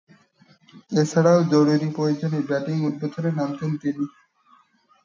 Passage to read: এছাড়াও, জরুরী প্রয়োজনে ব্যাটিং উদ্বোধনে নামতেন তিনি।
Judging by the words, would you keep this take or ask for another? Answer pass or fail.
pass